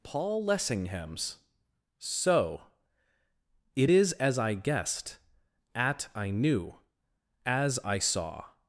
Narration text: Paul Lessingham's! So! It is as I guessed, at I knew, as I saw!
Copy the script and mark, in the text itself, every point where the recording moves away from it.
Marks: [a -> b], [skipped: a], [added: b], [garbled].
Paul Lessingham's! So! It is as I guessed, at I knew, as I saw!